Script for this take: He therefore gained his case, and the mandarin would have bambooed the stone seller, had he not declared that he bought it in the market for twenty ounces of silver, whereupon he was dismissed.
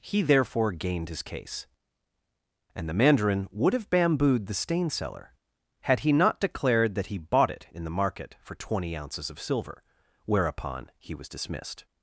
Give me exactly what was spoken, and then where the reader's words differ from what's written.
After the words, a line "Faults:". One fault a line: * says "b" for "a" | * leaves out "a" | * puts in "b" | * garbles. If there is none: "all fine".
He therefore gained his case, and the mandarin would have bambooed the stain seller, had he not declared that he bought it in the market for twenty ounces of silver, whereupon he was dismissed.
Faults:
* says "stain" for "stone"